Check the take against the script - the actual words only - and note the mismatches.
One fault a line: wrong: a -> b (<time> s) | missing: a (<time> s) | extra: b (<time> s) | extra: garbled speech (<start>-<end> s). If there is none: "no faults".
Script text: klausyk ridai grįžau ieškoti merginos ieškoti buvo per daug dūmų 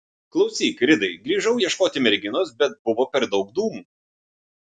wrong: ieškoti -> bet (2.6 s)